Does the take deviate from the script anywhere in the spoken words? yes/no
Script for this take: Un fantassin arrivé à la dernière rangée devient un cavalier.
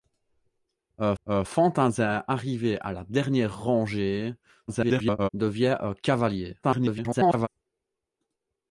yes